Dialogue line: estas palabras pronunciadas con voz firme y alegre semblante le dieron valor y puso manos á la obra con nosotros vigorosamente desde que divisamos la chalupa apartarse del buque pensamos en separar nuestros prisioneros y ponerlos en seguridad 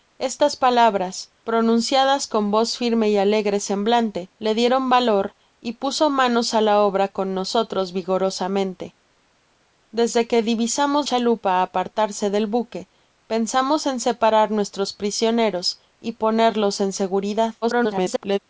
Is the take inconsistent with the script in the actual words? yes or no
yes